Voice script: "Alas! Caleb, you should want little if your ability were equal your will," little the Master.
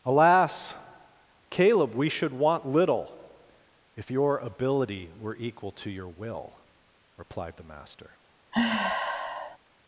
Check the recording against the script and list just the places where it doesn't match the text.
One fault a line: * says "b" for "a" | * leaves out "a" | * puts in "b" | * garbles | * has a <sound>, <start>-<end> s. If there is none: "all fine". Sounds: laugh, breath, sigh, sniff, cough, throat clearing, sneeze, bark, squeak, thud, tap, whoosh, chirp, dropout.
* says "we" for "you"
* puts in "to"
* says "replied" for "little"
* has a sigh, 8.5-9.6 s